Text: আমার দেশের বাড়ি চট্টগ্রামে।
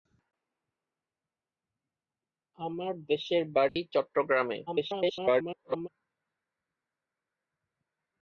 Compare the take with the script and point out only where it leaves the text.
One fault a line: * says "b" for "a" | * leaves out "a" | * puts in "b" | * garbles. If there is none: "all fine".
* garbles